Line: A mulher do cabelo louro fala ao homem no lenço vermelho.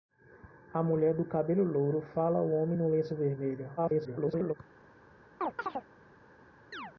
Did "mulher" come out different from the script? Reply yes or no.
no